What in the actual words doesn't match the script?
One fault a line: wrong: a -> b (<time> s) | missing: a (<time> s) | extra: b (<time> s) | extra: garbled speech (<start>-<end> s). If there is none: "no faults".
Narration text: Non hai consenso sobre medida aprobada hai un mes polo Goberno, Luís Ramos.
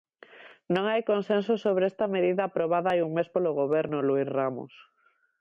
extra: esta (1.9 s)